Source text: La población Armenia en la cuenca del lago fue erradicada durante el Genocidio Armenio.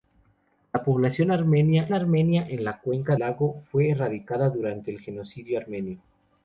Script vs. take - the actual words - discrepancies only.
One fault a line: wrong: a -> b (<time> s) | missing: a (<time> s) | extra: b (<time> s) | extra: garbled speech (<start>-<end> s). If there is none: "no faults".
extra: Armenia (1.9 s)
missing: del (3.1 s)